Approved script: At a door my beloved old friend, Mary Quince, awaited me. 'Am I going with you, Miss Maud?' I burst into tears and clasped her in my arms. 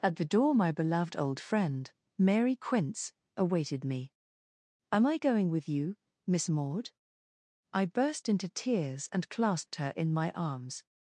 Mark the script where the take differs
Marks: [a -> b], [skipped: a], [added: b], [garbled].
At [a -> the] door my beloved old friend, Mary Quince, awaited me. 'Am I going with you, Miss Maud?' I burst into tears and clasped her in my arms.